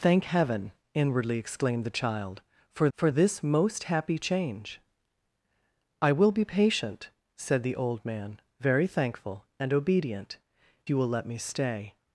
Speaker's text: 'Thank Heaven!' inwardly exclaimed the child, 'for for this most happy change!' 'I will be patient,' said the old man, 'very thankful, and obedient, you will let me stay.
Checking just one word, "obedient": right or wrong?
right